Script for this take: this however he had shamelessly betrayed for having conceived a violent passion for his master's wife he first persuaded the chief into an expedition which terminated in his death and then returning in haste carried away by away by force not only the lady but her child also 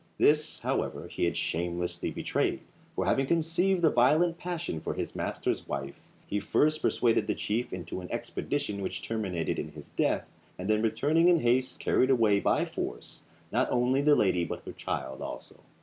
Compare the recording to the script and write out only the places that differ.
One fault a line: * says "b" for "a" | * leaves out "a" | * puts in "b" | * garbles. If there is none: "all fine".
* leaves out "away by"